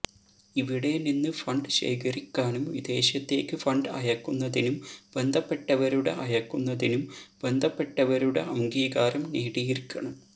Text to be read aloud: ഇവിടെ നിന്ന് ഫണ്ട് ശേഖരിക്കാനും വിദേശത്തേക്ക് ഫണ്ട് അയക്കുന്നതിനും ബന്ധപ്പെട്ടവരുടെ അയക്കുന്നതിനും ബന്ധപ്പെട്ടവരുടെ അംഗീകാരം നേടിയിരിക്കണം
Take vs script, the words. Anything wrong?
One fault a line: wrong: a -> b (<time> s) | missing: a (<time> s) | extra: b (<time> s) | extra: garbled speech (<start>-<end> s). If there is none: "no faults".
no faults